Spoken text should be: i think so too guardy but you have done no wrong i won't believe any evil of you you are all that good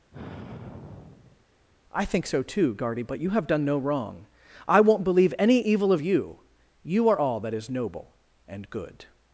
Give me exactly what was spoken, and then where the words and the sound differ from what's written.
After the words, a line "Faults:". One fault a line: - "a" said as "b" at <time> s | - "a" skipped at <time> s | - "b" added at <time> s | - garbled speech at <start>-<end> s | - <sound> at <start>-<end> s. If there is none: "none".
i think so too guardy but you have done no wrong i won't believe any evil of you you are all that is noble and good
Faults:
- sigh at 0.1-1.4 s
- "is noble and" added at 7.5 s